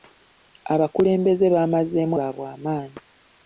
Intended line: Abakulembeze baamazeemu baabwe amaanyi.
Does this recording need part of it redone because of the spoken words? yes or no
no